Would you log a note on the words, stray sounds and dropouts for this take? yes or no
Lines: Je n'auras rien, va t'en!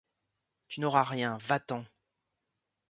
yes